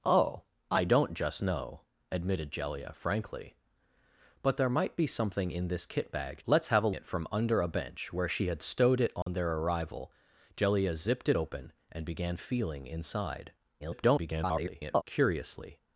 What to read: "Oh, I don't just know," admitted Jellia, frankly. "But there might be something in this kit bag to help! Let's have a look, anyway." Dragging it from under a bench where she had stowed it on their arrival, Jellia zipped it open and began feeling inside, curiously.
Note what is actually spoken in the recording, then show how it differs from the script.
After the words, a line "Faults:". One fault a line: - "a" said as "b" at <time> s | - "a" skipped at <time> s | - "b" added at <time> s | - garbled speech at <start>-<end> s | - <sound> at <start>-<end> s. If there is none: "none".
"Oh, I don't just know," admitted Jellia, frankly. "But there might be something in this kit bag! Let's have a it from under a bench where she had stowed it on their arrival, Jellia zipped it open and began feeling inside, [garbled] curiously.
Faults:
- "to help" skipped at 6.4 s
- "look anyway Dragging" skipped at 6.9 s
- dropout at 9.2-9.3 s
- garbled speech at 13.8-15.0 s